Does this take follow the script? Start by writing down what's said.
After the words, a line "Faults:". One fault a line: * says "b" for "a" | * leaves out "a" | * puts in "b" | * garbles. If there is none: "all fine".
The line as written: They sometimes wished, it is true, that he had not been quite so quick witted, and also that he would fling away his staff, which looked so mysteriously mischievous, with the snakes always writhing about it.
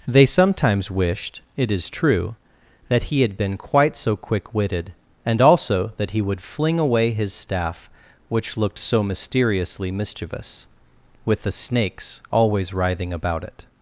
They sometimes wished, it is true, that he had been quite so quick witted, and also that he would fling away his staff, which looked so mysteriously mischievous, with the snakes always writhing about it.
Faults:
* leaves out "not"